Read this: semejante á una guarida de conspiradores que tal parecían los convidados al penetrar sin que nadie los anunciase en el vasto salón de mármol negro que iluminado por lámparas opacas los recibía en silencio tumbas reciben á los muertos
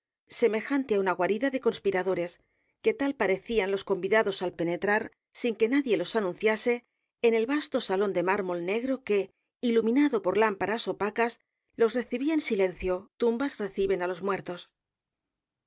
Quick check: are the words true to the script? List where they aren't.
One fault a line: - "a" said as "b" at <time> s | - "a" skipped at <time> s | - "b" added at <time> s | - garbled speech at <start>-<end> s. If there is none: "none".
none